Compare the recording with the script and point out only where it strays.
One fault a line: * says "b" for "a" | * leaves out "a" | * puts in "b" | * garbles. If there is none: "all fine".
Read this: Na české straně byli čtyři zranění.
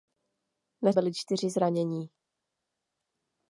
* leaves out "české straně"